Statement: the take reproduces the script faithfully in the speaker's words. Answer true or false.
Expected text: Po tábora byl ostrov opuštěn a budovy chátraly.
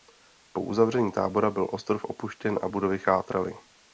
false